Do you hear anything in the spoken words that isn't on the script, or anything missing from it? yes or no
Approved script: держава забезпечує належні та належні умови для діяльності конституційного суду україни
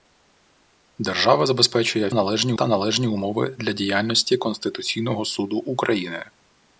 no